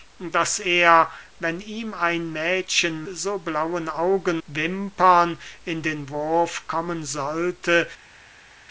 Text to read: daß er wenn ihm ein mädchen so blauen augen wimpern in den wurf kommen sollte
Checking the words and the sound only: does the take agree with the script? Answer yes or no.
yes